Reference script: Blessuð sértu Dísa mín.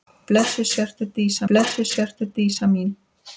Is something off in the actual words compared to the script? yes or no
yes